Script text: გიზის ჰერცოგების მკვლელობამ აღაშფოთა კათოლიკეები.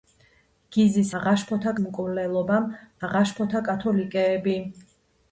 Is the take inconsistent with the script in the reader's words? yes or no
yes